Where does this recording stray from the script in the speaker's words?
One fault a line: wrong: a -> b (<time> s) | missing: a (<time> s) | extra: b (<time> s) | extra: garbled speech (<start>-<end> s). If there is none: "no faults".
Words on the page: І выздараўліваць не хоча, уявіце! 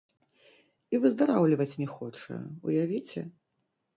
no faults